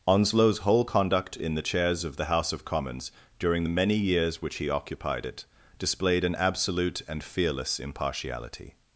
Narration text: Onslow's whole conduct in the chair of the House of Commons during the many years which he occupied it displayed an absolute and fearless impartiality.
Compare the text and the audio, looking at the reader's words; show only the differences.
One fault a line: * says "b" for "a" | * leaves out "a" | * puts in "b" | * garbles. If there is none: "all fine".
* says "chairs" for "chair"